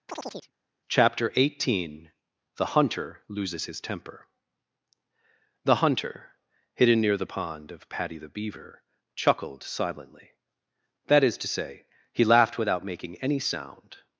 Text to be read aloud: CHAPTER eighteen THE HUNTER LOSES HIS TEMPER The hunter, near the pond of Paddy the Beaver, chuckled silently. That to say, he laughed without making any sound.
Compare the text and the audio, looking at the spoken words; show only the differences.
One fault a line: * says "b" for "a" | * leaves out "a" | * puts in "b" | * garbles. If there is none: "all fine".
* puts in "hidden"
* puts in "is"